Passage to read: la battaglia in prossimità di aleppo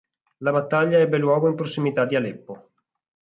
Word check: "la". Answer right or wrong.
right